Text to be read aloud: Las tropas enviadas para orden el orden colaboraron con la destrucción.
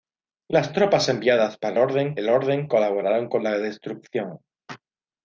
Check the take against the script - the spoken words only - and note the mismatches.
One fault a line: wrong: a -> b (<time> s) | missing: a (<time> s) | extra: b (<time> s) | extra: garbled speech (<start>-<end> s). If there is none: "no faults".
no faults